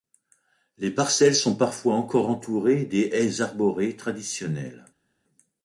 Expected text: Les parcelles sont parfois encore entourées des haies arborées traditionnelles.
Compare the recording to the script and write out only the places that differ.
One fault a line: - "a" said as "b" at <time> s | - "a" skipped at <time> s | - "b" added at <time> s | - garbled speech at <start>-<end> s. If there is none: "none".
none